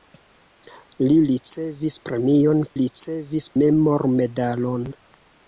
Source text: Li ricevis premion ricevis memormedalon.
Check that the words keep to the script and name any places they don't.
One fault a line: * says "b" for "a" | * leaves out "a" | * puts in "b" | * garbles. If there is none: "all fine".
all fine